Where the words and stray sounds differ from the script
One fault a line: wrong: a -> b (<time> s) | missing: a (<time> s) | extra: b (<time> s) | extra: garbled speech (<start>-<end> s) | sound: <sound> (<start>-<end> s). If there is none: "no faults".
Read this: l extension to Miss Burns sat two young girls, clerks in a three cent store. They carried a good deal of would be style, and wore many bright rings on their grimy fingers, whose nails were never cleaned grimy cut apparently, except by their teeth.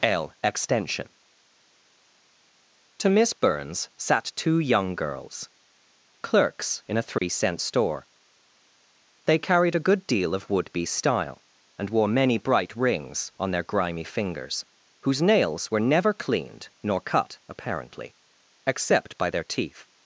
sound: dropout (7.2-7.2 s)
wrong: grimy -> nor (16.8 s)